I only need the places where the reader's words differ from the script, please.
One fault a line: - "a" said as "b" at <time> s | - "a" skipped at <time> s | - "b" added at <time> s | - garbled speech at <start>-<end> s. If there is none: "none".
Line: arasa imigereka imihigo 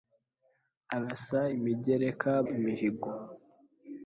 none